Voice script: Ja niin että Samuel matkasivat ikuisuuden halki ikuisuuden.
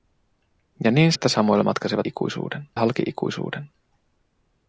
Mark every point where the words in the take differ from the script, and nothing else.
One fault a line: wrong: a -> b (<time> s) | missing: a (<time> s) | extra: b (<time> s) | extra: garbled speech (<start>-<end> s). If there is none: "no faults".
no faults